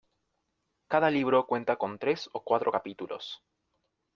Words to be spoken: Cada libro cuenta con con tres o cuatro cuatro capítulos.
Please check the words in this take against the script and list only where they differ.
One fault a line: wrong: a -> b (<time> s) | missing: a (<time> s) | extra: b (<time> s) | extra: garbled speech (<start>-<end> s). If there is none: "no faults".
missing: con (2.0 s)
missing: cuatro (2.7 s)